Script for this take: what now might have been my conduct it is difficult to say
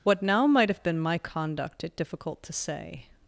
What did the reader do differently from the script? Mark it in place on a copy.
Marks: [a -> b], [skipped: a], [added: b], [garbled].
what now might have been my conduct it [skipped: is] difficult to say